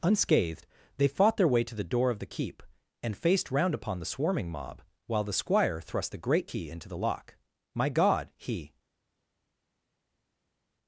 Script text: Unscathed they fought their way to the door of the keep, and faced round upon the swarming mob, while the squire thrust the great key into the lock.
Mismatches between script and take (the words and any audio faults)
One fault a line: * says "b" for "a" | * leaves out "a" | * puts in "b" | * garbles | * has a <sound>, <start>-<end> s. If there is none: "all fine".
* puts in "My God he"